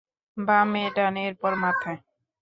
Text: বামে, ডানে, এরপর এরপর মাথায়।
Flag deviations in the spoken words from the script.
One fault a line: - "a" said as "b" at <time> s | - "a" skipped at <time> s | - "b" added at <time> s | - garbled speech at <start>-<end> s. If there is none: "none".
- "এরপর" skipped at 1.5 s